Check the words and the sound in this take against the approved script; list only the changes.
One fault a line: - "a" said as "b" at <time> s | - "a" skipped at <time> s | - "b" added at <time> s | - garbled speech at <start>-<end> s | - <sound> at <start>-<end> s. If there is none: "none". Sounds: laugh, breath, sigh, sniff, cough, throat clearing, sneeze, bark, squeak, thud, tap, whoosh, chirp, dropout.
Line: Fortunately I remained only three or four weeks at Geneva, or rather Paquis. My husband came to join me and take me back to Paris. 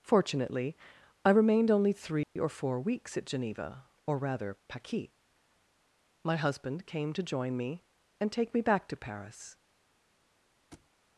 - dropout at 2.2-2.4 s
- thud at 10.7-10.9 s